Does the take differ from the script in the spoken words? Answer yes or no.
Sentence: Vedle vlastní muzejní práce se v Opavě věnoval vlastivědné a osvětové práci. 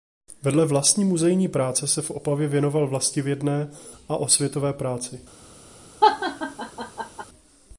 no